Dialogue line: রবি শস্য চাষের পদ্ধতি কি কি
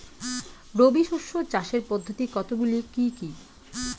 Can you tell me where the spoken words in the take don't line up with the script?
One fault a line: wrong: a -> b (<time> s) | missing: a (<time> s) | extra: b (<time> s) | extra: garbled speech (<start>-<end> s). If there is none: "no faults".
extra: কতগুলি (2.3 s)